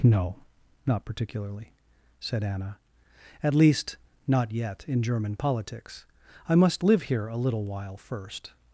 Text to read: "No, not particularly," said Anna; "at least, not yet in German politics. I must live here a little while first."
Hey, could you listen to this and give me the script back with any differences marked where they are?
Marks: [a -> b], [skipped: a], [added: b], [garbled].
"No, not particularly," said Anna; "at least, not yet in German politics. I must live here a little while first."